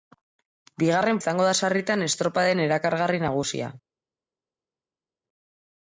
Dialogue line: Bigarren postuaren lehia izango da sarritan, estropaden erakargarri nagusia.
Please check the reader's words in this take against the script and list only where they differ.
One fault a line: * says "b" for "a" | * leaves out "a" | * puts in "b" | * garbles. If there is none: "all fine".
* leaves out "postuaren lehia"